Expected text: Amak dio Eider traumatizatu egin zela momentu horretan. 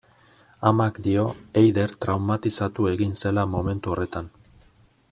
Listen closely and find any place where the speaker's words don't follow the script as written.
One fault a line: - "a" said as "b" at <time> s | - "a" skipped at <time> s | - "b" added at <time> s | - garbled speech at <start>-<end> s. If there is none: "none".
none